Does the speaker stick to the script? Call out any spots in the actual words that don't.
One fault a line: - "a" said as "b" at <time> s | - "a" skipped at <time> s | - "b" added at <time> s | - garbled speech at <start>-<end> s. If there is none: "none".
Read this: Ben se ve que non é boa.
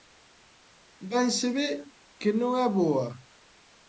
none